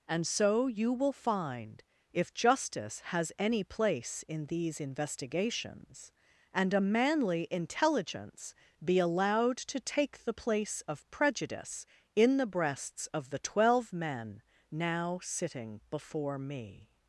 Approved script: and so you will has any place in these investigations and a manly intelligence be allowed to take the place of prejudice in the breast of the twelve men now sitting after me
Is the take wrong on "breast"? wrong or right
wrong